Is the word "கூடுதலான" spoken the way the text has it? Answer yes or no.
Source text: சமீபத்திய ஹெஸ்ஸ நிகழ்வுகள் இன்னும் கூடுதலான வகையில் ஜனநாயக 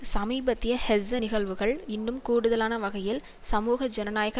yes